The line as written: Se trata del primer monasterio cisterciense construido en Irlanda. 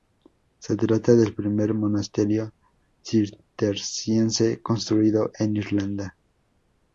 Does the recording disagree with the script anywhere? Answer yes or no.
no